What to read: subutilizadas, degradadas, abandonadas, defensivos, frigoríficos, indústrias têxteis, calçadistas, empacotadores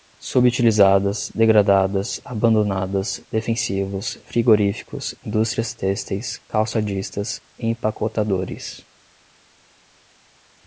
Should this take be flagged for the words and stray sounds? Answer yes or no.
no